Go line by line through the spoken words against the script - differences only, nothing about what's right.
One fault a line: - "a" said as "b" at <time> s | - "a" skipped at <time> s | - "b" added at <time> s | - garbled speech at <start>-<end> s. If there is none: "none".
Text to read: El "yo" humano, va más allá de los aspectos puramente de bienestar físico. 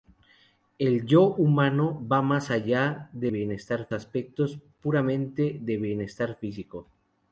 - "los" said as "bienestar" at 3.3 s